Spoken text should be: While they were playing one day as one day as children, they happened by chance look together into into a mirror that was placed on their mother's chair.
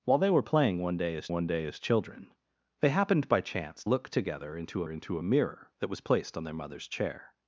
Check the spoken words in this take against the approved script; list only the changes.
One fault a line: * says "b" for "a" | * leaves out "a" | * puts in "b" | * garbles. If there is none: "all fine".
all fine